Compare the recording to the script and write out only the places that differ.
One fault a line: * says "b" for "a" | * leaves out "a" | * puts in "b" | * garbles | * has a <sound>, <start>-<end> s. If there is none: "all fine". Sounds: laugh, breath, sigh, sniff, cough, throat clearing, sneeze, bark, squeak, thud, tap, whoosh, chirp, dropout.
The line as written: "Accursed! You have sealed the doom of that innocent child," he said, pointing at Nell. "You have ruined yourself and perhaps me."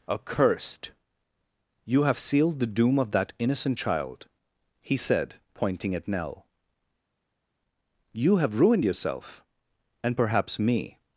all fine